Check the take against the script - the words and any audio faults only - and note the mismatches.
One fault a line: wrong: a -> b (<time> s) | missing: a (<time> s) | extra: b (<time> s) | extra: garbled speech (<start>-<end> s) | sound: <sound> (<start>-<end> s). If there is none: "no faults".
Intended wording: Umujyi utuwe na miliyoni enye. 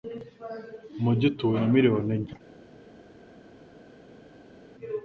no faults